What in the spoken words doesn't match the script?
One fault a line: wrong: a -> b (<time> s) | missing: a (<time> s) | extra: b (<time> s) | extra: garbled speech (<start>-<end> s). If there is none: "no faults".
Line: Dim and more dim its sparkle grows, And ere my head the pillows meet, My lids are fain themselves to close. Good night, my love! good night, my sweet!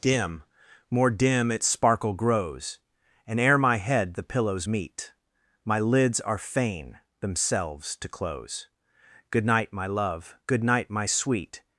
missing: and (0.4 s)